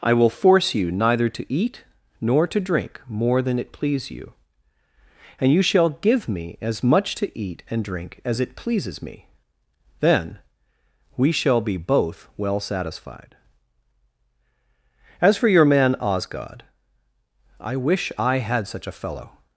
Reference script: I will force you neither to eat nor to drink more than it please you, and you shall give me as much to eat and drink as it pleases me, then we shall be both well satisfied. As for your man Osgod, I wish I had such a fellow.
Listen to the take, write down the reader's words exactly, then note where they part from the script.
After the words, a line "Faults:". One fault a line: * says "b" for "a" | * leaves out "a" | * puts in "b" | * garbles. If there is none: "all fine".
I will force you neither to eat nor to drink more than it please you, and you shall give me as much to eat and drink as it pleases me, then we shall be both well satisfied. As for your man Osgod, I wish I had such a fellow.
Faults:
all fine